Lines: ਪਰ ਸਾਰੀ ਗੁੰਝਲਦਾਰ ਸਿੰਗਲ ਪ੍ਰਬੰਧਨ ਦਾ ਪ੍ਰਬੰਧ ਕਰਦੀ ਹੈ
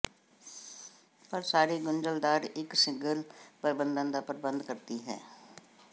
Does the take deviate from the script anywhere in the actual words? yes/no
yes